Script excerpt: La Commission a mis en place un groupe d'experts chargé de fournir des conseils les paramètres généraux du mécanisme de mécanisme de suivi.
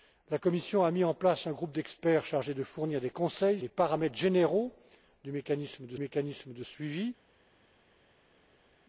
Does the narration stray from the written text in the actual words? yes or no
no